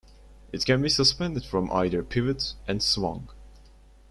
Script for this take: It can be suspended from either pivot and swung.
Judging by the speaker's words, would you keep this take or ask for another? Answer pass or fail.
pass